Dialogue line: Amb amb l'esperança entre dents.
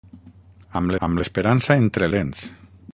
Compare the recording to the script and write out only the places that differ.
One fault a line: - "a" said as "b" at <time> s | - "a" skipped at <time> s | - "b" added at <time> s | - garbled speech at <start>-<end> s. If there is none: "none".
none